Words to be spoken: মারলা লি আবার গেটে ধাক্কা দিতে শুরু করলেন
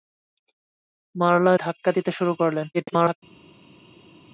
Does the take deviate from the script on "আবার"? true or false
true